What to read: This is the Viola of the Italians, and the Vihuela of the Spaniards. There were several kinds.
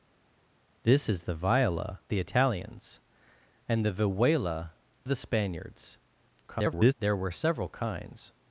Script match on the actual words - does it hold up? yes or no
no